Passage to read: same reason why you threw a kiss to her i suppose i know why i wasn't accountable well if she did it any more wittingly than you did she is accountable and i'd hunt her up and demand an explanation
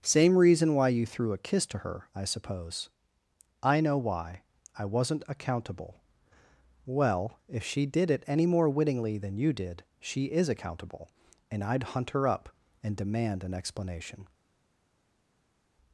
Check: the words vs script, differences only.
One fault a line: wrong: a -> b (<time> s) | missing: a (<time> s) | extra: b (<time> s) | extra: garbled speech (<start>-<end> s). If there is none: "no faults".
no faults